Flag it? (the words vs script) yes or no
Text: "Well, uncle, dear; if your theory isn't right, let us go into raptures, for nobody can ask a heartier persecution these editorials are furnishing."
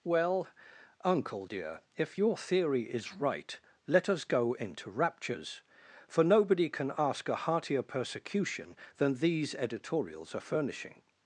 yes